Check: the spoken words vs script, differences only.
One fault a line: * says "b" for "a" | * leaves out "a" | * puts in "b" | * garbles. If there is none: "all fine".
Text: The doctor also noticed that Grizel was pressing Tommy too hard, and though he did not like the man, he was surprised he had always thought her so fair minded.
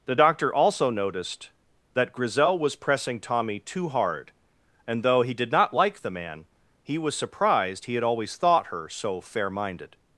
all fine